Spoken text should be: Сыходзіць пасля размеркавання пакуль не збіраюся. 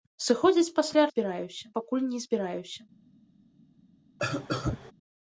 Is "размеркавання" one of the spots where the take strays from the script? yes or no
yes